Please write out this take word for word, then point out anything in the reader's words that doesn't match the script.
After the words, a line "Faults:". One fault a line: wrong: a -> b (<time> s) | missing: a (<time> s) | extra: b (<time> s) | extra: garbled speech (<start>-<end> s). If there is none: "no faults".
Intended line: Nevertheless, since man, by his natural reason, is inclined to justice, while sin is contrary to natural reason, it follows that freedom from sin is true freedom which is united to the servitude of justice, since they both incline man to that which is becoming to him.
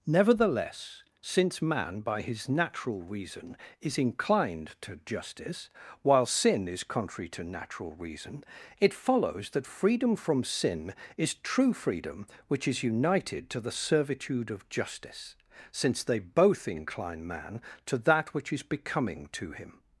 Nevertheless, since man, by his natural reason, is inclined to justice, while sin is contrary to natural reason, it follows that freedom from sin is true freedom which is united to the servitude of justice, since they both incline man to that which is becoming to him.
Faults:
no faults